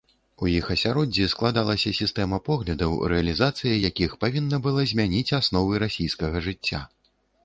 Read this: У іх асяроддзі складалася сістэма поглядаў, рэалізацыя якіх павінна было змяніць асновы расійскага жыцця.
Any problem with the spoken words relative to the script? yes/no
yes